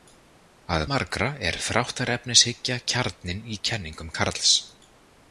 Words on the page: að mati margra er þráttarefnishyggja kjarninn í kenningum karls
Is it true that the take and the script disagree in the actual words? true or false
true